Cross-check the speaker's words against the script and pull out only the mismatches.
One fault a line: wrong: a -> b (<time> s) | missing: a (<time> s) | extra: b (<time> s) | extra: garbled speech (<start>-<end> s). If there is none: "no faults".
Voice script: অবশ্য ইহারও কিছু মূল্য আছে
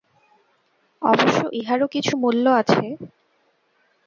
no faults